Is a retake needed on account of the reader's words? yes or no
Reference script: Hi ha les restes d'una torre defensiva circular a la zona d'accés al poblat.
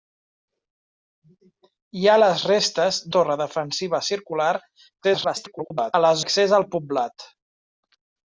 yes